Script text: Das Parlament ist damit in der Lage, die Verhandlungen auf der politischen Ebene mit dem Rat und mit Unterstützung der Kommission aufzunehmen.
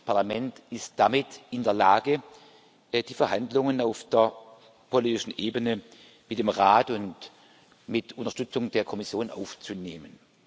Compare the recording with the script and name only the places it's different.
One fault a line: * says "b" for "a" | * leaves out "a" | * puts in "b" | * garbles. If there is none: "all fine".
all fine